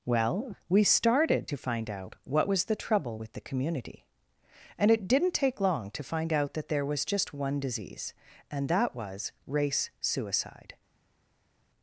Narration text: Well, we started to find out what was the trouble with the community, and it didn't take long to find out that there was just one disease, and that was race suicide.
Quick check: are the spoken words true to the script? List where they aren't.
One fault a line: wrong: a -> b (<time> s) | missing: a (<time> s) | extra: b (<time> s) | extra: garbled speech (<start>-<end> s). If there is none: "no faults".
no faults